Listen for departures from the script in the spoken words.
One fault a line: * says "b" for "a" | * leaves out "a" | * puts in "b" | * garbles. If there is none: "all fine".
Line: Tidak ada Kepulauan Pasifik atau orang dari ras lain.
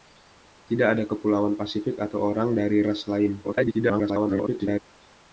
* garbles